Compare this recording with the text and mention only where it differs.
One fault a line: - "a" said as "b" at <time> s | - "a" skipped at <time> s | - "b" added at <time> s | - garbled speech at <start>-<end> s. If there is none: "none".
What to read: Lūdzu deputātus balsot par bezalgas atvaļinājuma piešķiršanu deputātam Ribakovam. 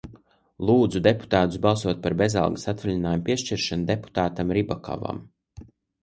none